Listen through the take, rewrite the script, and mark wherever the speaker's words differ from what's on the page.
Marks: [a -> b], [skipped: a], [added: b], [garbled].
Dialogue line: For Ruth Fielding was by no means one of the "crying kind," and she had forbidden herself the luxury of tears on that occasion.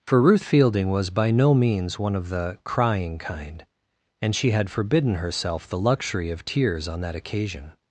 For Ruth Fielding was by no means one of the "crying kind," and she had forbidden herself the luxury of tears on that occasion.